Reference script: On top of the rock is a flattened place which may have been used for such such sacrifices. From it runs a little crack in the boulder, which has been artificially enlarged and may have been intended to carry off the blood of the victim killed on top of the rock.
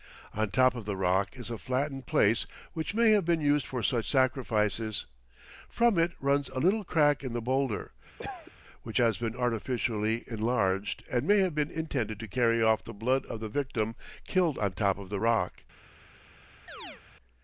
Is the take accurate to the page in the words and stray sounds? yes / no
no